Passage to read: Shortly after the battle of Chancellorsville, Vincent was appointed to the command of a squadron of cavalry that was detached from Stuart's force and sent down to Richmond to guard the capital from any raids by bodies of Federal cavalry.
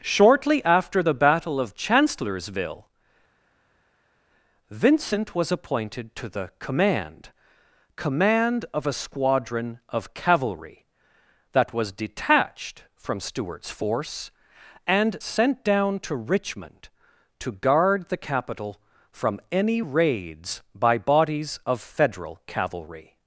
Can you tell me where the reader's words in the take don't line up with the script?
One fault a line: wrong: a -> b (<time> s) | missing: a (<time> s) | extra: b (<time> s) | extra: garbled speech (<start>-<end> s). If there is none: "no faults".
extra: command (8.0 s)